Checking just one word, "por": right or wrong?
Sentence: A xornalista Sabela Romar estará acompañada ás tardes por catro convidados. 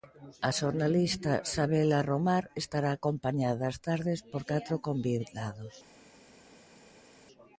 right